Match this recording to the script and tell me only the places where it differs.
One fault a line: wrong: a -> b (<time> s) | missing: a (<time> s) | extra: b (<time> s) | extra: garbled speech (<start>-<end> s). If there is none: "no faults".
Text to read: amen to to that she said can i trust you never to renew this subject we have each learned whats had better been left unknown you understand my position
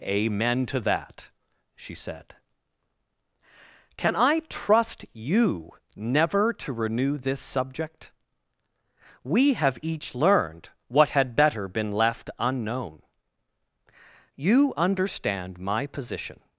missing: to (0.8 s)
wrong: whats -> what (10.9 s)